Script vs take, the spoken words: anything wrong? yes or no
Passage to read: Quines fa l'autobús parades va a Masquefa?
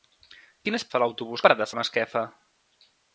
no